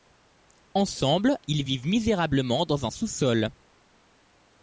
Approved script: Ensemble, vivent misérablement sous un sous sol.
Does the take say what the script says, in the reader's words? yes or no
no